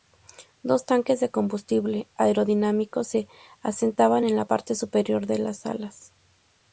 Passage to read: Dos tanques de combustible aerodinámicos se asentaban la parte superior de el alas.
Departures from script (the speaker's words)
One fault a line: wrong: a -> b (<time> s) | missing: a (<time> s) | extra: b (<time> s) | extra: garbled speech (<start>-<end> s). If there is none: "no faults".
extra: en (4.2 s)
wrong: el -> las (5.4 s)